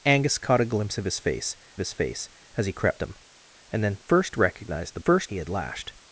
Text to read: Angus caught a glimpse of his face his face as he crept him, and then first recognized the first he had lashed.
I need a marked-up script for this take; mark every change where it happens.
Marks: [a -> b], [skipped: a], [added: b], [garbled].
Angus caught a glimpse of his face his face as he crept him, and then first recognized the first he had lashed.